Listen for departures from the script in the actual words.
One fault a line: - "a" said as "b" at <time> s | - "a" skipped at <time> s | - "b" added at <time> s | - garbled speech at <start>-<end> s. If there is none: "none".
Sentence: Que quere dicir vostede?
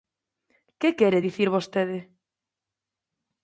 none